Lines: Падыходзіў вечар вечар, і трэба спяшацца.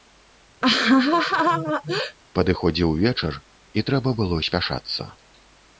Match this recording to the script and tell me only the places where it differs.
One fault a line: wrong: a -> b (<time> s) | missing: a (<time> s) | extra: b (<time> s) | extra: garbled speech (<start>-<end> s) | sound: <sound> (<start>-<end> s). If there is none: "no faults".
sound: laugh (0.6-2.2 s)
missing: вечар (3.3 s)
extra: было (4.2 s)